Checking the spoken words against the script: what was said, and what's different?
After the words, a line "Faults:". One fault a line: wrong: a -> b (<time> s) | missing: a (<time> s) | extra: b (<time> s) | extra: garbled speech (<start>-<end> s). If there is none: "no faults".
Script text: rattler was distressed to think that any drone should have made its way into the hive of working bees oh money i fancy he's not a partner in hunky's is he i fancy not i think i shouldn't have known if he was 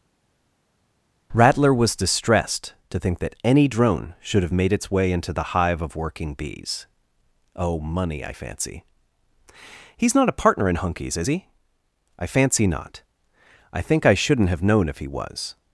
rattler was distressed to think that any drone should have made its way into the hive of working bees oh money i fancy he's not a partner in hunky's is he i fancy not i think i shouldn't have known if he was
Faults:
no faults